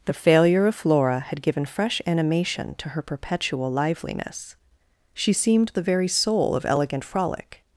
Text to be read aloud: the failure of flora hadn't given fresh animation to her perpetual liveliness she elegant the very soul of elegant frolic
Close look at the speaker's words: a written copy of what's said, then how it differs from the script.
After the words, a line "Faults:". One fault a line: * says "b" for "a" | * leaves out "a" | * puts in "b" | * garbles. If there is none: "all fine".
the failure of flora had given fresh animation to her perpetual liveliness she seemed the very soul of elegant frolic
Faults:
* says "had" for "hadn't"
* says "seemed" for "elegant"